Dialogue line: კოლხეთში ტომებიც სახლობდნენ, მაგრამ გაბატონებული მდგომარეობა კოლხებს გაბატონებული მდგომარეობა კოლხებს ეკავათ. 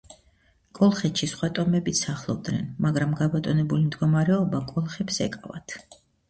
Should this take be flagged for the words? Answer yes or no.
yes